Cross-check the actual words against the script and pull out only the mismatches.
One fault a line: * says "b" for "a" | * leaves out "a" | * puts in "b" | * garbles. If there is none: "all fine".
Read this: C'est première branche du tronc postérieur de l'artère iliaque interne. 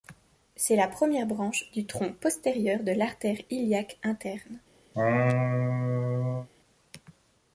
* puts in "la"